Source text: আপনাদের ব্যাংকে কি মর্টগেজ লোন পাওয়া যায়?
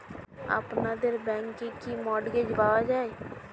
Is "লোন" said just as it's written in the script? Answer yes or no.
no